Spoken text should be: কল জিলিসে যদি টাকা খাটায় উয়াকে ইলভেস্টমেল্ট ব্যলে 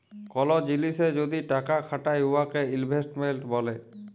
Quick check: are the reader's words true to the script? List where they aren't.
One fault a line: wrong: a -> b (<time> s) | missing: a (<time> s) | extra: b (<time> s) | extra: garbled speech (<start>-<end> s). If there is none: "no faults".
no faults